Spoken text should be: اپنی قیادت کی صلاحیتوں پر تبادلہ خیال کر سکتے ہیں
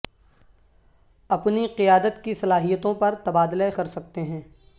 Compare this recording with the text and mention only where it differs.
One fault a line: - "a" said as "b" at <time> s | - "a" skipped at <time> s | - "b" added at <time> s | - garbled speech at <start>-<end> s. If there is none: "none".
- "خیال" skipped at 3.7 s